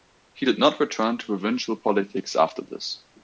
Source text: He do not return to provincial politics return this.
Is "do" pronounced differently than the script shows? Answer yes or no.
yes